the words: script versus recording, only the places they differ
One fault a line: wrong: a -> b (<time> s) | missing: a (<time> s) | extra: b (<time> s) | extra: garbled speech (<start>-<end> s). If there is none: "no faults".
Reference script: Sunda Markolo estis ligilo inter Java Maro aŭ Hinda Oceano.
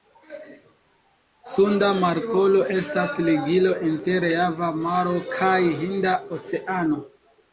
wrong: estis -> estas (2.8 s)
wrong: aŭ -> kaj (5.3 s)